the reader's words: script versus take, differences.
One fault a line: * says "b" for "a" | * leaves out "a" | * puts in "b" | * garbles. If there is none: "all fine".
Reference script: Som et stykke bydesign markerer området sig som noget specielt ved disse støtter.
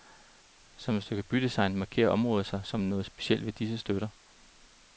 all fine